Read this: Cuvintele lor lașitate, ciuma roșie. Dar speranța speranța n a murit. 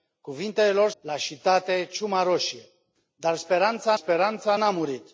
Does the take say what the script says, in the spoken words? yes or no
yes